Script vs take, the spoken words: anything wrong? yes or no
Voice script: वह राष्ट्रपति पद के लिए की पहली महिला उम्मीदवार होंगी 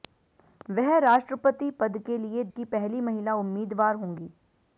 no